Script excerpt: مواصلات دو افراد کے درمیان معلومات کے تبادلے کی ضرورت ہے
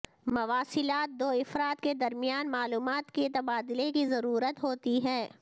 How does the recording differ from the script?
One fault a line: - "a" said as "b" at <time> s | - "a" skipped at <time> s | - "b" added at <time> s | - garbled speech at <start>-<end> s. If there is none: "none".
- "ہوتی" added at 4.6 s